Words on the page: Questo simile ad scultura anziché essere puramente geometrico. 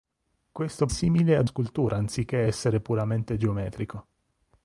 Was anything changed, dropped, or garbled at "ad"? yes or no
no